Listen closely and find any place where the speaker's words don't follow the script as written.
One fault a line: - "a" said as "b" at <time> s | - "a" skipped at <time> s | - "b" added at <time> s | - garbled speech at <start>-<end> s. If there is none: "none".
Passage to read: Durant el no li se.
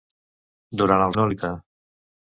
none